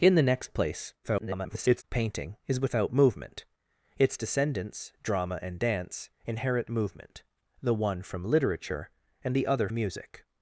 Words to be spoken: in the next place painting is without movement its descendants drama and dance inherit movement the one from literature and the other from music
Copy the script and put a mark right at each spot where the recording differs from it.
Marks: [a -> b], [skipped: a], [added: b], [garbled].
in the next place [garbled] painting is without movement its descendants drama and dance inherit movement the one from literature and the other [skipped: from] music